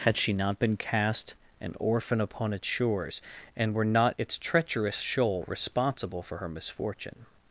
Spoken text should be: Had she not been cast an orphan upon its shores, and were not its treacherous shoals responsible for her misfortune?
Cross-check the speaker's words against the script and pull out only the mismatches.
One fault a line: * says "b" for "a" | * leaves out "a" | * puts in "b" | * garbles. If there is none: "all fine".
* says "shoal" for "shoals"